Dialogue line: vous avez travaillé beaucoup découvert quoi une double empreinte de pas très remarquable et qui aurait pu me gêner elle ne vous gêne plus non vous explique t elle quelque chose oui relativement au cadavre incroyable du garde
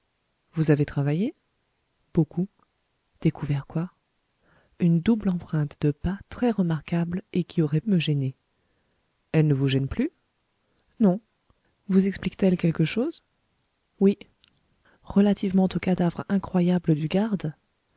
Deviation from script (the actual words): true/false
true